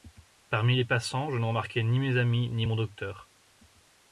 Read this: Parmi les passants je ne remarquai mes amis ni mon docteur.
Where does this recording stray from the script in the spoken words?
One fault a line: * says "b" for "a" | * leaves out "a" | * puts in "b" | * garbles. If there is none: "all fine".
* puts in "ni"